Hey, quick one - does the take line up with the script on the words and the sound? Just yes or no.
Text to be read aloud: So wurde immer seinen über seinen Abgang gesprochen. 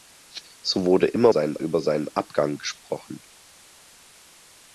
yes